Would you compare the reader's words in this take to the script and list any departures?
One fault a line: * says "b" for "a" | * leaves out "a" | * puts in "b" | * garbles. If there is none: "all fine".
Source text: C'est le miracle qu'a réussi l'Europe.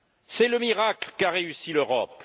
all fine